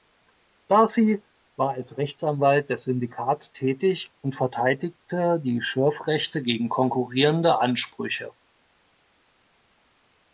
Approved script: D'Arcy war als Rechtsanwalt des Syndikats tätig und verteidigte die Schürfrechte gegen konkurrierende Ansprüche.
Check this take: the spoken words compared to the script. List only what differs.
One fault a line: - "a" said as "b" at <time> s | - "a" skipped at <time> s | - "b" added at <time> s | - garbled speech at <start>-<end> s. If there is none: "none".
none